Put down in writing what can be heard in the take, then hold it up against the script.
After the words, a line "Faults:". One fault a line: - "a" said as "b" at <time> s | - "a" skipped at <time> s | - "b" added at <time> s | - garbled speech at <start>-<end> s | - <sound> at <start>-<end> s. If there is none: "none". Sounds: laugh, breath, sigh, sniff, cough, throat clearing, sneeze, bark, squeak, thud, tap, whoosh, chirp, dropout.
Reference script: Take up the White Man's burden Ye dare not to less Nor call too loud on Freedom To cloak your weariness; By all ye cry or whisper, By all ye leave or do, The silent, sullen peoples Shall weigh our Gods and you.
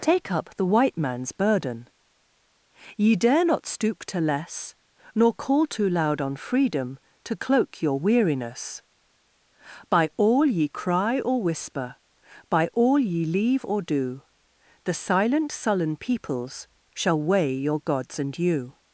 Take up the White Man's burden Ye dare not stoop to less Nor call too loud on Freedom To cloak your weariness; By all ye cry or whisper, By all ye leave or do, The silent, sullen peoples Shall weigh your Gods and you.
Faults:
- "stoop" added at 3.7 s
- "our" said as "your" at 17.6 s